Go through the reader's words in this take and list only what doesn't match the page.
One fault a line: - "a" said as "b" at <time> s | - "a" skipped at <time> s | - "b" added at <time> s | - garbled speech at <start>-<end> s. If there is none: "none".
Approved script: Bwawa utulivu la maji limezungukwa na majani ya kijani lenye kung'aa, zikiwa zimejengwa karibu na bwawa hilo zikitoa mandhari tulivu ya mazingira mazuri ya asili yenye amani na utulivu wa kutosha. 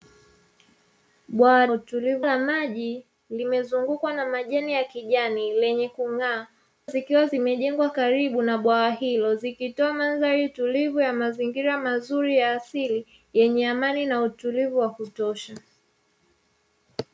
none